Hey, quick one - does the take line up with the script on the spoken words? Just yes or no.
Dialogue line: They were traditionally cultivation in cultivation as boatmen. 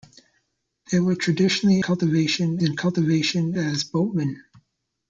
yes